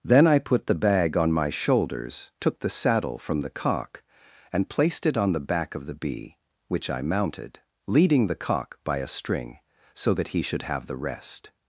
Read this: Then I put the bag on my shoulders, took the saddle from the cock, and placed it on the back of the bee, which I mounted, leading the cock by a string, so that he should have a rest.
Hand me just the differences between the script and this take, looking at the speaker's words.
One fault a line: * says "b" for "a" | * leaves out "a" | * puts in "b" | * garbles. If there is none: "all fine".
* says "the" for "a"